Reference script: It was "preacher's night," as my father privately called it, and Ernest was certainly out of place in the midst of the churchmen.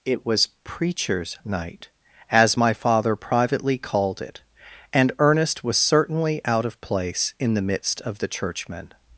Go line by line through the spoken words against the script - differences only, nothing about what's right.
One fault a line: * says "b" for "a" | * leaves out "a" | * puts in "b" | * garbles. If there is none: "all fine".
all fine